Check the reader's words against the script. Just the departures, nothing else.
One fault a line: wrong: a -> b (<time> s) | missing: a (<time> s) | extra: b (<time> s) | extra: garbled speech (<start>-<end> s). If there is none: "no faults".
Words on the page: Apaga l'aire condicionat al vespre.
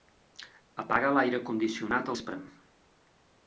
missing: al (2.1 s)